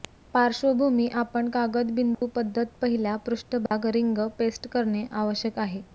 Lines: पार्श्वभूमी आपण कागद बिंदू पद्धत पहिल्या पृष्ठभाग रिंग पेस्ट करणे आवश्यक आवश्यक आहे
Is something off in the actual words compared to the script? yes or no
yes